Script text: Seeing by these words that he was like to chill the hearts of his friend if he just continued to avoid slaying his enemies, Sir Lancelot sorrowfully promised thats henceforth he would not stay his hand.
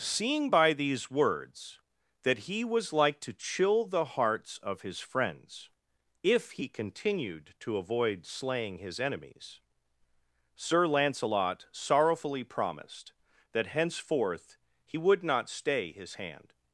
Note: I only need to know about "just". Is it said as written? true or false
false